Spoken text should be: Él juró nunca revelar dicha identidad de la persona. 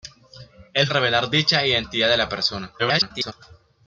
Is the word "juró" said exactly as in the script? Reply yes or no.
no